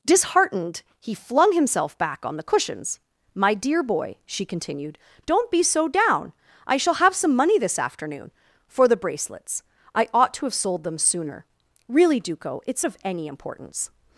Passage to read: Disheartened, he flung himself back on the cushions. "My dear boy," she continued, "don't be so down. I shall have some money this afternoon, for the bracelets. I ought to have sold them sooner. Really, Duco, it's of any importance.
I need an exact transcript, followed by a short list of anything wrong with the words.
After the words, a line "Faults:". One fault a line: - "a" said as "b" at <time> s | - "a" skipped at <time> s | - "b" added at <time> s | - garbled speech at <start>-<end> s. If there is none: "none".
Disheartened, he flung himself back on the cushions. "My dear boy," she continued, "don't be so down. I shall have some money this afternoon, for the bracelets. I ought to have sold them sooner. Really, Duco, it's of any importance.
Faults:
none